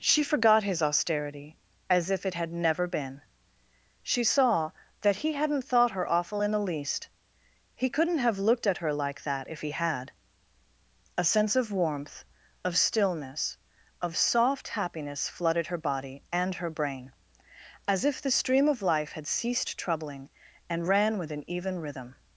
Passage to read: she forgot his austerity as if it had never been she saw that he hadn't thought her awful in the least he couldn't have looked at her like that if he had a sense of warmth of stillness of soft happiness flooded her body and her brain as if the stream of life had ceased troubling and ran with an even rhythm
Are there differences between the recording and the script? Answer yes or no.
no